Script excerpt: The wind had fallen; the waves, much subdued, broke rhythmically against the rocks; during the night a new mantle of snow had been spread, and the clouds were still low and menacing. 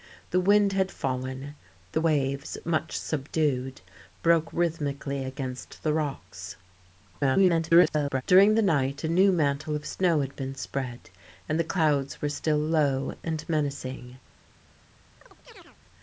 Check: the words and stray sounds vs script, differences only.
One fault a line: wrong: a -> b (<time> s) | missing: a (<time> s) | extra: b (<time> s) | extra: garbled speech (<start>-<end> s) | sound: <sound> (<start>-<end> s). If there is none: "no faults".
extra: garbled speech (7.1-8.2 s)
sound: chirp (15.2-15.8 s)